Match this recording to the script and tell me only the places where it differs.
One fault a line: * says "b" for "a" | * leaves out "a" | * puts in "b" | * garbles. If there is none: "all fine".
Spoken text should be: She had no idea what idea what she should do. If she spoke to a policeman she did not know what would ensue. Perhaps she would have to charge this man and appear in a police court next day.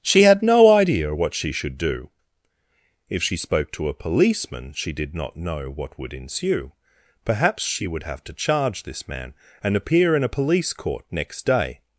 * leaves out "idea what"